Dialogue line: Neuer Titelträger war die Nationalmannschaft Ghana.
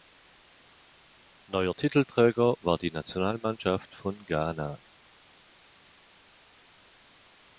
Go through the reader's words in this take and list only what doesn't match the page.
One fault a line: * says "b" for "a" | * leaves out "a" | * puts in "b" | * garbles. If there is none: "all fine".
* puts in "von"